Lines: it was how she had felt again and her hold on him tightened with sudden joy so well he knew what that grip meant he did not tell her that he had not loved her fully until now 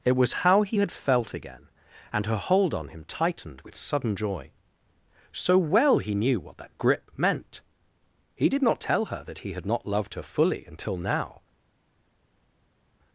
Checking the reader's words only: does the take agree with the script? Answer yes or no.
no